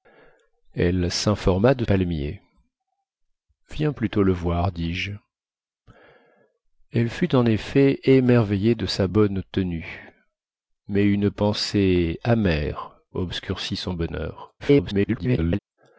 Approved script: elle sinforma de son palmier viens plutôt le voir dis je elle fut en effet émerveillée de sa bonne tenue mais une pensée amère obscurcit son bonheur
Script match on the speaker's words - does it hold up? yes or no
no